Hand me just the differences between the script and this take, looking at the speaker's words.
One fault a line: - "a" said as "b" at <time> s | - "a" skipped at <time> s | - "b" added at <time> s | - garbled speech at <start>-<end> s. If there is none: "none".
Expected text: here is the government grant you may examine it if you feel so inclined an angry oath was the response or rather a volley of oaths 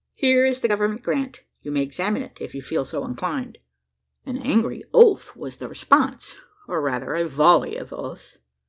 none